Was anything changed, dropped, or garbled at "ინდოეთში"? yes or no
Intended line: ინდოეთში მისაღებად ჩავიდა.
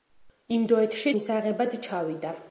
no